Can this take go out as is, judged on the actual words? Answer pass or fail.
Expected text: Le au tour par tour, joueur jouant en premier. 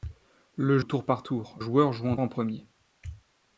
pass